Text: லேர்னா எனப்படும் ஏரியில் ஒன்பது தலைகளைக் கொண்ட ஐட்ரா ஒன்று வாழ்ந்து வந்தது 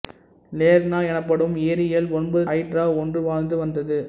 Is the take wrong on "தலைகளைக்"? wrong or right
wrong